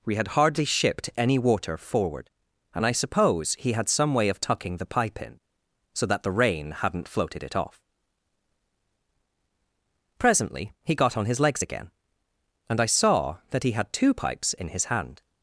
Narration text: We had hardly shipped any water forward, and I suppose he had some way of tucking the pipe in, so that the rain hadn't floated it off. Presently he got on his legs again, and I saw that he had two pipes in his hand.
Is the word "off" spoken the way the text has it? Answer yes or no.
yes